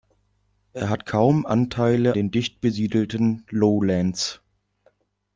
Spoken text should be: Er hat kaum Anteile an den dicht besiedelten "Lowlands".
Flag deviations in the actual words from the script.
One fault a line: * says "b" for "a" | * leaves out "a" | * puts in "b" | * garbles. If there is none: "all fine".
* leaves out "an"